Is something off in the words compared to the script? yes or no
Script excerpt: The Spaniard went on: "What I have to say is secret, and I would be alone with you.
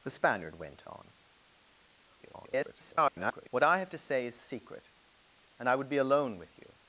yes